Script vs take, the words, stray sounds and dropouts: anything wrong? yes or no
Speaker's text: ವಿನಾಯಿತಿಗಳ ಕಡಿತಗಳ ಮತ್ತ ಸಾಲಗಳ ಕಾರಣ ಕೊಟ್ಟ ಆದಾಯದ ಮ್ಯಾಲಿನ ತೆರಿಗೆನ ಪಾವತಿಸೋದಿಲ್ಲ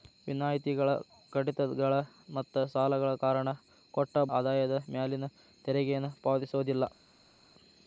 no